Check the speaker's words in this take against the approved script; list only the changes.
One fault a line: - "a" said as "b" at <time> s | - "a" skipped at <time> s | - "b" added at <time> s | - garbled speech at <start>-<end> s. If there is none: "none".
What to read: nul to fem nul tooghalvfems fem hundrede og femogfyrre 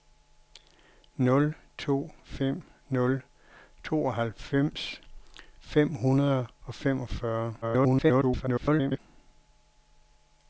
- garbled speech at 7.6-9.0 s